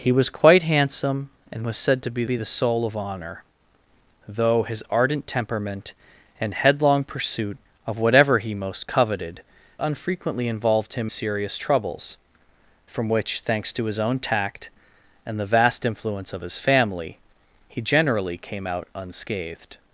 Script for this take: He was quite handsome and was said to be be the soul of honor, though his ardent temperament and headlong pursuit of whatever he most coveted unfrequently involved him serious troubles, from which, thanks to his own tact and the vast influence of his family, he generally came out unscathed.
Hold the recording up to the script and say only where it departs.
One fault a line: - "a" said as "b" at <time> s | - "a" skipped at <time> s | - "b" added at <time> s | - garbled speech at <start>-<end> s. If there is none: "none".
none